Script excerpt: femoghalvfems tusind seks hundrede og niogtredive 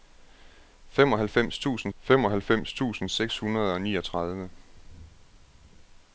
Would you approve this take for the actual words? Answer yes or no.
no